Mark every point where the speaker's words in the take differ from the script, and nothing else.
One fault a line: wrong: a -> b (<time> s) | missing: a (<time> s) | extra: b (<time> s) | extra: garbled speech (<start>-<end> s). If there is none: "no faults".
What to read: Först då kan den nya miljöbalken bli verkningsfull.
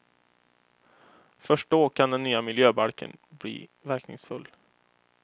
no faults